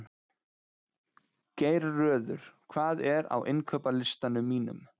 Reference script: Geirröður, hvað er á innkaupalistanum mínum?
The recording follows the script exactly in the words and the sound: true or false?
true